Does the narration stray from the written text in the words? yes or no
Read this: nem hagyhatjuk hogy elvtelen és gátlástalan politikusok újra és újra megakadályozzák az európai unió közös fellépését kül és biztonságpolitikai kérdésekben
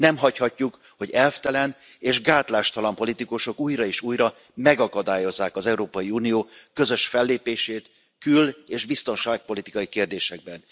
no